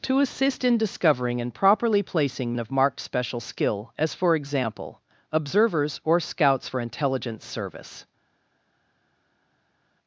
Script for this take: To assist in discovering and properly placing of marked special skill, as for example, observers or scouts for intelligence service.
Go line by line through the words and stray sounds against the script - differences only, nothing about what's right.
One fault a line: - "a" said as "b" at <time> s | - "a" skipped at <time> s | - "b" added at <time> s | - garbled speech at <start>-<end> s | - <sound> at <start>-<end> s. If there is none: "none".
none